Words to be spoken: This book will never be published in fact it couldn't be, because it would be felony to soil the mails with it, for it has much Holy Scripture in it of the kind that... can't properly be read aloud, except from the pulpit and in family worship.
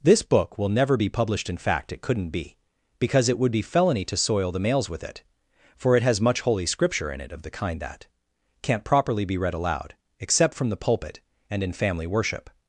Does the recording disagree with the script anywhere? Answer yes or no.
no